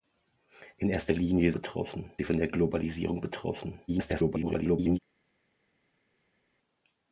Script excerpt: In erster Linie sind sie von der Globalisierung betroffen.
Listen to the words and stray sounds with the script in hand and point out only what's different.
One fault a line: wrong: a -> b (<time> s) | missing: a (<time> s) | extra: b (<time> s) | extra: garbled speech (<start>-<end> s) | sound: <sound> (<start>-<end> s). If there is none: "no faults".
wrong: sind -> betroffen (1.5 s)
extra: garbled speech (3.9-5.0 s)